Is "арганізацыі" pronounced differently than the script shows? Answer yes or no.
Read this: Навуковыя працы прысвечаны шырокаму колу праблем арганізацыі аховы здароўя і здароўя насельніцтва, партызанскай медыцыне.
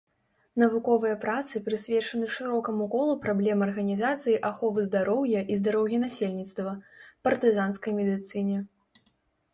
no